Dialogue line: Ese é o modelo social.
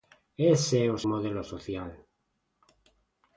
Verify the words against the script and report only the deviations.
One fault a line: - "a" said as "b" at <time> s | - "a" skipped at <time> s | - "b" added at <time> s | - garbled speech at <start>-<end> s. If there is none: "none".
none